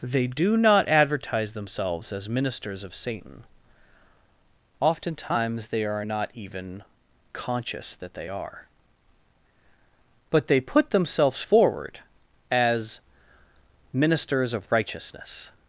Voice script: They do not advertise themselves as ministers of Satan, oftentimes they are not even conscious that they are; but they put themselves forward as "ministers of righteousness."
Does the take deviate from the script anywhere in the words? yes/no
no